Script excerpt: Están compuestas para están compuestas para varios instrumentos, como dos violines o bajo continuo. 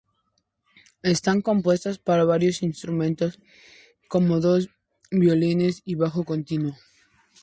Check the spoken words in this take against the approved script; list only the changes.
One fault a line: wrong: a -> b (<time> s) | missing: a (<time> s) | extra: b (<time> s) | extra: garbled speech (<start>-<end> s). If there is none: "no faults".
missing: están compuestas para (2.2 s)
wrong: o -> y (5.8 s)